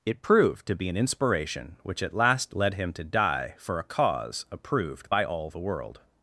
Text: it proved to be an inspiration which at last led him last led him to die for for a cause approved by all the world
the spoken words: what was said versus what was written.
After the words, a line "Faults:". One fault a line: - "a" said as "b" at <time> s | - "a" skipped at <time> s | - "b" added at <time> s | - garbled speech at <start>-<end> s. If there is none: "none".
it proved to be an inspiration which at last led him to die for a cause approved by all the world
Faults:
- "last led him" skipped at 2.9 s
- "for" skipped at 3.8 s